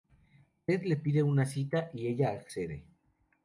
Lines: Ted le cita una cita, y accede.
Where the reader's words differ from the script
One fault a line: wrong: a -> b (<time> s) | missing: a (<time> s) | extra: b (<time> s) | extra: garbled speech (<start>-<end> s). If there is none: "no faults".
wrong: cita -> pide (0.9 s)
extra: ella (2.1 s)